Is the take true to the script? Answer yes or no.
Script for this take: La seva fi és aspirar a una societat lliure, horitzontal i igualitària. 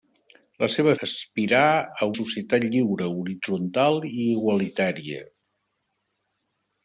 no